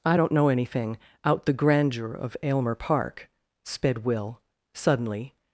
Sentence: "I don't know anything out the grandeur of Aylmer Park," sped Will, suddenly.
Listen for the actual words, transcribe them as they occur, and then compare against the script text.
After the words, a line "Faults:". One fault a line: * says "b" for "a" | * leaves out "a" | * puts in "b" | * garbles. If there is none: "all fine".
"I don't know anything out the grandeur of Aylmer Park," sped Will, suddenly.
Faults:
all fine